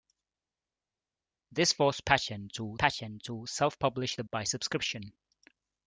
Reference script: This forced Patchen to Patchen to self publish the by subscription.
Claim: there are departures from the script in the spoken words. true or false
false